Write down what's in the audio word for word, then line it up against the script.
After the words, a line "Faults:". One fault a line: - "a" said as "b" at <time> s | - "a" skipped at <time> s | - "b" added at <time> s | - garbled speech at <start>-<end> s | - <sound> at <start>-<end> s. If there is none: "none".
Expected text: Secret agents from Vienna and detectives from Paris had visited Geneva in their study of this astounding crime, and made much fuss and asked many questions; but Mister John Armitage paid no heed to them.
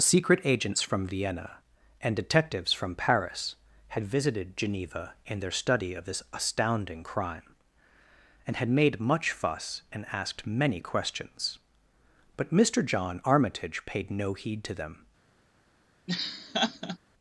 Secret agents from Vienna and detectives from Paris had visited Geneva in their study of this astounding crime, and had made much fuss and asked many questions; but Mister John Armitage paid no heed to them.
Faults:
- "had" added at 8.5 s
- laugh at 16.1-17.0 s